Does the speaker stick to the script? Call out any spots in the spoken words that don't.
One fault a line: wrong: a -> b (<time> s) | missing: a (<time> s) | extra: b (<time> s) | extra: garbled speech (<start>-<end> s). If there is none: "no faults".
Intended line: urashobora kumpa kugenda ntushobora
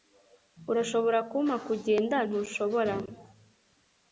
no faults